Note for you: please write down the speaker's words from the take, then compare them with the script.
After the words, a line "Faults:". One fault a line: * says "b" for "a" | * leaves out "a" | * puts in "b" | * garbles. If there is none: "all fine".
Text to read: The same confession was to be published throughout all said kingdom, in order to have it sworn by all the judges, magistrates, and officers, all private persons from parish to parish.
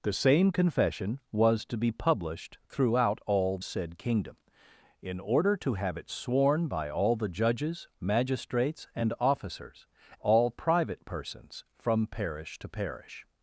The same confession was to be published throughout all said kingdom, in order to have it sworn by all the judges, magistrates, and officers, all private persons from parish to parish.
Faults:
all fine